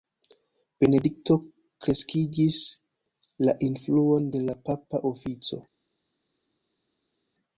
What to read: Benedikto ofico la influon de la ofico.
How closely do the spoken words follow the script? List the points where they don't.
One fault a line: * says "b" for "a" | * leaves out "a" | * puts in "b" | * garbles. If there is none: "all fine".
* says "kreskigis" for "ofico"
* puts in "papa"